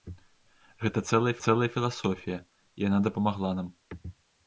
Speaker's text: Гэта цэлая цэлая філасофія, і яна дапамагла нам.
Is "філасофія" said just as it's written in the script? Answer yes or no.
yes